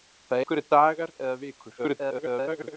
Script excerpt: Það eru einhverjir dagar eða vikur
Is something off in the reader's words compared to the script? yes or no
yes